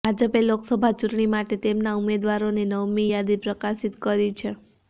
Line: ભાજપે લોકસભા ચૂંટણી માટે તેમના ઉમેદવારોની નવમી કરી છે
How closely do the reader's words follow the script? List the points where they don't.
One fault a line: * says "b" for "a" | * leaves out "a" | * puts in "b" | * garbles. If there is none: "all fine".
* puts in "યાદી પ્રકાશિત"